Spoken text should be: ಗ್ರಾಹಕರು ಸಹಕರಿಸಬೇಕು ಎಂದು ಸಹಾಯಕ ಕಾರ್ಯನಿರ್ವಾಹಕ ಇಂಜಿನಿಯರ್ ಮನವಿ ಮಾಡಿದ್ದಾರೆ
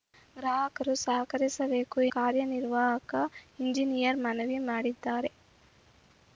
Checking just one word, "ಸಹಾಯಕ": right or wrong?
wrong